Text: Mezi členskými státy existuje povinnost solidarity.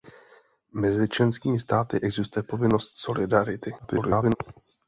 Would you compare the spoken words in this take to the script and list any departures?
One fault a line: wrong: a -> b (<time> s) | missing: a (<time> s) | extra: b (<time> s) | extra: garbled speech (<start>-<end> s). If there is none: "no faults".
extra: garbled speech (3.8-4.4 s)